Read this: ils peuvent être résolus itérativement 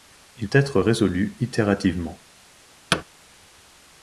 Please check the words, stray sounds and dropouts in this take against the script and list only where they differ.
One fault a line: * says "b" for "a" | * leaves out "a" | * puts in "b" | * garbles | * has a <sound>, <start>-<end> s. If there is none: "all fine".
* leaves out "peuvent"
* has a thud, 2.9-3.0 s